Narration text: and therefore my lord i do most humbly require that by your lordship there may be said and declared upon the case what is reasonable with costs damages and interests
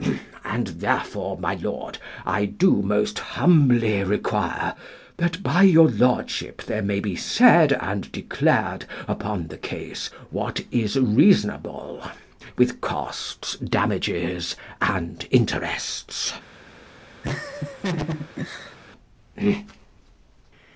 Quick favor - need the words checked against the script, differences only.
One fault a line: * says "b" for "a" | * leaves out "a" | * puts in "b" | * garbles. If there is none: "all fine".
all fine